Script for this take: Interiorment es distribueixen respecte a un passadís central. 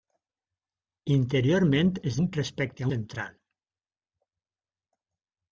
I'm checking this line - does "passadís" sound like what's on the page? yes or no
no